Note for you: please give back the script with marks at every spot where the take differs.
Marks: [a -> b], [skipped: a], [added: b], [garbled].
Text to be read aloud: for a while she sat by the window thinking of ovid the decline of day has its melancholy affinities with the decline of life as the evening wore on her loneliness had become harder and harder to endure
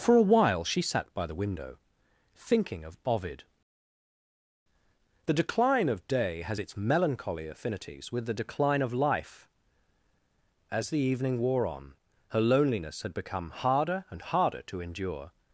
for a while she sat by the window thinking of ovid the decline of day has its melancholy affinities with the decline of life as the evening wore on her loneliness had become harder and harder to endure